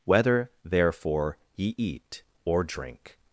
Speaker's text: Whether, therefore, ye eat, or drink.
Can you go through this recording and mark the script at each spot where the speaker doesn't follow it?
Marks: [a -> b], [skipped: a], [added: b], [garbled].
Whether, therefore, ye eat, or drink.